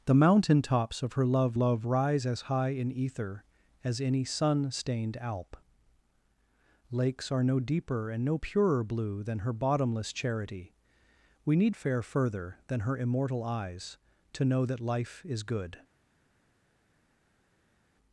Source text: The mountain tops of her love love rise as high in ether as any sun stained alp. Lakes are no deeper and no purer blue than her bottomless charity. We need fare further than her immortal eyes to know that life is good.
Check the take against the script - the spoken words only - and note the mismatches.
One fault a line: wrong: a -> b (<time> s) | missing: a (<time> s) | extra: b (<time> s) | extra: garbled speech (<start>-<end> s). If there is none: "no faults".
no faults